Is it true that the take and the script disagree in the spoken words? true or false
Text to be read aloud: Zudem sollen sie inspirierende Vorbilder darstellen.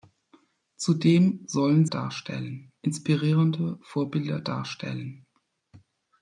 true